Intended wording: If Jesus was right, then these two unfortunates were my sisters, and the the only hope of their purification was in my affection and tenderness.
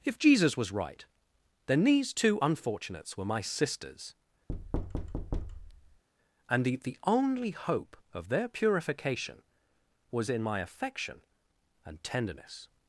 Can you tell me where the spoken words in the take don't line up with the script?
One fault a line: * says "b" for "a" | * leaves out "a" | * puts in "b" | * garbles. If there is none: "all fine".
all fine